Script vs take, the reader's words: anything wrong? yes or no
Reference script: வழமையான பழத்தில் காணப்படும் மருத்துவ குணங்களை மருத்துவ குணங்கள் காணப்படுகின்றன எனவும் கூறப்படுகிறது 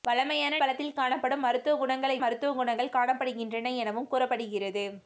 no